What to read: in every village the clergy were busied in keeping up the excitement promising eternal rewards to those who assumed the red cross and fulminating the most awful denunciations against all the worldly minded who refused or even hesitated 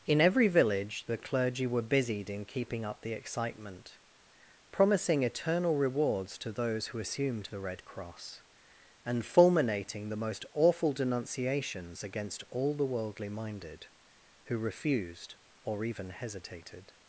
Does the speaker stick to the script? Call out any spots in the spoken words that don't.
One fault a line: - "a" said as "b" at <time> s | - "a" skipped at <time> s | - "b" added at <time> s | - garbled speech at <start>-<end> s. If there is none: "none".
none